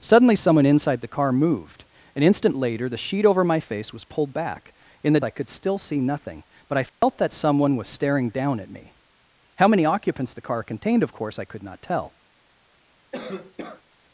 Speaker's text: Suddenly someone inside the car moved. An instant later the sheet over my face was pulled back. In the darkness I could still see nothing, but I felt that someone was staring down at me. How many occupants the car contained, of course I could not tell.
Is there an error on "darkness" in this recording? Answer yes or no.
yes